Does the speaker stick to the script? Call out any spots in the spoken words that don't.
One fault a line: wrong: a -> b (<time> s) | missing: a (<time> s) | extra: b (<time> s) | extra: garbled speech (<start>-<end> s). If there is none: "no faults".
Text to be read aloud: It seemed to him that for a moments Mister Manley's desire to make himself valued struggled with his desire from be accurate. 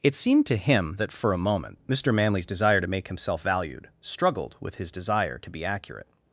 wrong: moments -> moment (1.4 s)
wrong: from -> to (5.4 s)